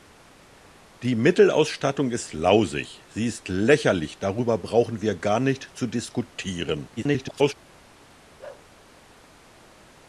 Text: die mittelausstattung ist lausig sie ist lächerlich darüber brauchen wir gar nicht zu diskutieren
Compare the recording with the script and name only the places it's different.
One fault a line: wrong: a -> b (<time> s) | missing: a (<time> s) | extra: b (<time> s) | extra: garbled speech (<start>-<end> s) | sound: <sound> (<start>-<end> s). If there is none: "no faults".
extra: garbled speech (7.0-7.5 s)
sound: bark (8.4-8.7 s)